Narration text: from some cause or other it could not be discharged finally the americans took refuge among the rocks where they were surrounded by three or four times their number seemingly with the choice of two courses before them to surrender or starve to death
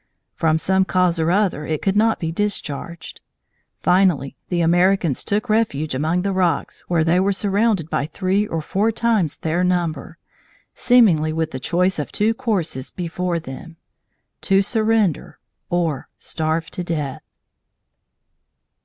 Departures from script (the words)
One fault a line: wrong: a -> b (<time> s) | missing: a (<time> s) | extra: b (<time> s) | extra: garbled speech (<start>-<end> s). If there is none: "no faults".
no faults